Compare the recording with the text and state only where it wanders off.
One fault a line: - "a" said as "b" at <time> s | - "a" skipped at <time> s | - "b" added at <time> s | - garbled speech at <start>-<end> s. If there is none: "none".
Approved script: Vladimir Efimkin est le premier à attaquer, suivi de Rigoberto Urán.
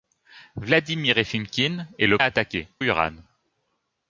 - "premier" skipped at 2.2 s
- "suivi de Rigoberto" skipped at 2.7 s